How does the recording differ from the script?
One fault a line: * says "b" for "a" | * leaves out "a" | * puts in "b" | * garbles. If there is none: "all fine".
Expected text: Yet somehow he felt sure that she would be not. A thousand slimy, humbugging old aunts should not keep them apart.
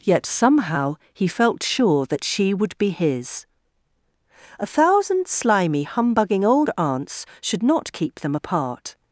* says "his" for "not"